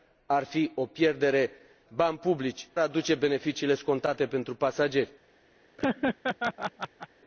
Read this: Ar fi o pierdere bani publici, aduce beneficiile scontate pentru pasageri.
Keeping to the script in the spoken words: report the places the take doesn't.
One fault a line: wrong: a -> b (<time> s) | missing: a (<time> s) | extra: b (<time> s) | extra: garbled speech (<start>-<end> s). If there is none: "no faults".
no faults